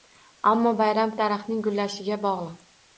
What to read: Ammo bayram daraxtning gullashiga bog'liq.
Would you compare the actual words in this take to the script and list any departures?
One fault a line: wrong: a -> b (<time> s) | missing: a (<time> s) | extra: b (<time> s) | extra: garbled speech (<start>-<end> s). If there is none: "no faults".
no faults